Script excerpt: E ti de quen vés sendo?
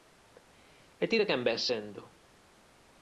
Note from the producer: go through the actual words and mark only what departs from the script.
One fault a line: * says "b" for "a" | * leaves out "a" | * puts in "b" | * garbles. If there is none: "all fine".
all fine